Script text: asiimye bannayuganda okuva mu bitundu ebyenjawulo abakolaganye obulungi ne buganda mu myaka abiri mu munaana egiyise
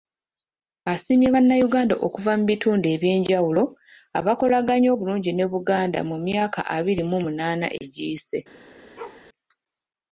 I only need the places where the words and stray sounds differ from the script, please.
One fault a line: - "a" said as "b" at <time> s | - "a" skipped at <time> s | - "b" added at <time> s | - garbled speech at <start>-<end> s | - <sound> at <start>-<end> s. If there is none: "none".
- bark at 9.0-9.3 s